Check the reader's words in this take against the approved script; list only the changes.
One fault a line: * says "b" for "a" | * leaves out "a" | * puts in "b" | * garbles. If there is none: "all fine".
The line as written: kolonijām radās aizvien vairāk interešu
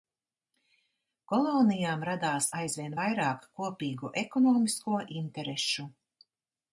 * puts in "kopīgu ekonomisko"